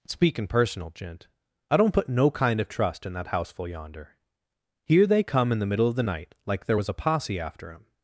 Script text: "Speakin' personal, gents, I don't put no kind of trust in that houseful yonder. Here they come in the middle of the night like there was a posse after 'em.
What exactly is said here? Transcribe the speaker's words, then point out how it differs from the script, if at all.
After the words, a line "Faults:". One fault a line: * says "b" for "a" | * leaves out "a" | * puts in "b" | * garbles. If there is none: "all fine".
"Speakin' personal, gent, I don't put no kind of trust in that houseful yonder. Here they come in the middle of the night like there was a posse after 'em.
Faults:
* says "gent" for "gents"